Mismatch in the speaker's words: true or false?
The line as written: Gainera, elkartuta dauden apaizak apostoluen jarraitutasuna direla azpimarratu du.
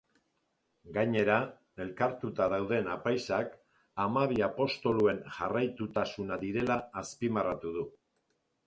true